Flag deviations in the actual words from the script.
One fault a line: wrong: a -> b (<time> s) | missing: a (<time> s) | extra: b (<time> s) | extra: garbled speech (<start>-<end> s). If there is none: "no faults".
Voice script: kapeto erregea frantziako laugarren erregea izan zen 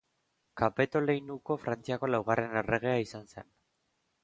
wrong: erregea -> leinuko (1.0 s)